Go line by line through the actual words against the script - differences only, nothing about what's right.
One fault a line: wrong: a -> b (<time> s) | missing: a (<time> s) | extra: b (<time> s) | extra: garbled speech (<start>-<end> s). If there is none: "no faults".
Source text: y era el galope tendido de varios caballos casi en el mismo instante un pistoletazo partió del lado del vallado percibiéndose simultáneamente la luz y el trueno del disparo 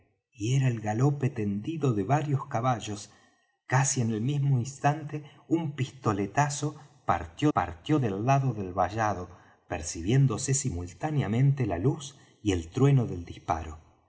extra: partió (7.5 s)